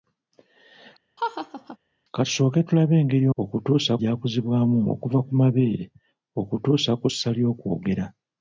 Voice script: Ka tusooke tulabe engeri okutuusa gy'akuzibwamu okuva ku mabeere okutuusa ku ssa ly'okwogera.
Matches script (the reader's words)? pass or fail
pass